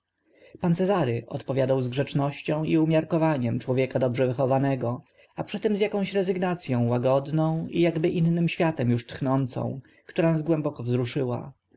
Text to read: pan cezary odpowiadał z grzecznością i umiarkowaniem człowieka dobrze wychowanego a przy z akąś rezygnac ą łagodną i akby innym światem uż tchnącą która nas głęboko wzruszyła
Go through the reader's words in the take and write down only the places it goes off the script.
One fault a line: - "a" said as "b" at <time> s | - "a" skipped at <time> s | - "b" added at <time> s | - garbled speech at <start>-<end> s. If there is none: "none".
- "tym" added at 5.6 s